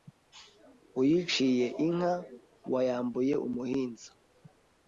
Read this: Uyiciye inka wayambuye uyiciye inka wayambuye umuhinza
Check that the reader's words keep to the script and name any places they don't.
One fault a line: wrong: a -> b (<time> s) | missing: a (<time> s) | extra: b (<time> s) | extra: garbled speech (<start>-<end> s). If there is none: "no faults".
missing: uyiciye inka wayambuye (3.3 s)